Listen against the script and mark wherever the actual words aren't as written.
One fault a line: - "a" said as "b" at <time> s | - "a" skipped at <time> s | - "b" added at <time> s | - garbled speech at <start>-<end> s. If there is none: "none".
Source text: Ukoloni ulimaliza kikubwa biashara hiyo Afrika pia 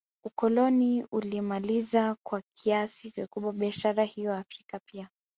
- "kwa kiasi" added at 2.2 s